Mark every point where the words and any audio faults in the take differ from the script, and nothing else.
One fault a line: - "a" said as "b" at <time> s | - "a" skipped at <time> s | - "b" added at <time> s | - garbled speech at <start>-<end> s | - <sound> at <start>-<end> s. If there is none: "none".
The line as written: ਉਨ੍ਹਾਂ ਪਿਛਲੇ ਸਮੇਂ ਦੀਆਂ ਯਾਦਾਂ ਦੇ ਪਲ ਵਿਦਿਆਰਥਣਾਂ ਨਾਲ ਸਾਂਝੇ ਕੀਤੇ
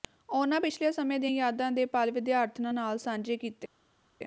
none